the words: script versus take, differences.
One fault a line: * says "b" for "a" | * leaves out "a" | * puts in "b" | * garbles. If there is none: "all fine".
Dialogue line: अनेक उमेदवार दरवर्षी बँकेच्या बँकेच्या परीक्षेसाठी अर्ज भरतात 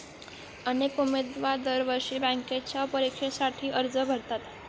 * leaves out "बँकेच्या"